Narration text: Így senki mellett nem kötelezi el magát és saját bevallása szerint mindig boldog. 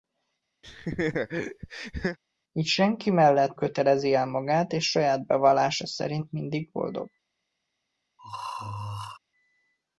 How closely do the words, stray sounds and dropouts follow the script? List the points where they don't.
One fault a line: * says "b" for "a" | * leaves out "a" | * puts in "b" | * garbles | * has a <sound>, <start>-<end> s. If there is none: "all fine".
* has a laugh, 0.6-2.2 s
* leaves out "nem"
* has a throat clearing, 8.2-9.2 s